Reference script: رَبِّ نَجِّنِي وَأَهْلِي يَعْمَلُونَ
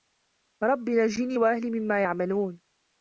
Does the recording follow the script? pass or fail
fail